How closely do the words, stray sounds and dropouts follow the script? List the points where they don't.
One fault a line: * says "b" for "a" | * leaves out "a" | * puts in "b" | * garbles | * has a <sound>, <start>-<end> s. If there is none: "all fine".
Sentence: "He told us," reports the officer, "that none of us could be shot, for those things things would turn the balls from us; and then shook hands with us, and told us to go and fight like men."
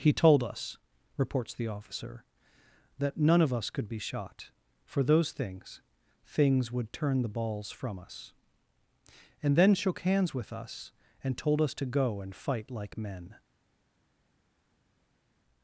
all fine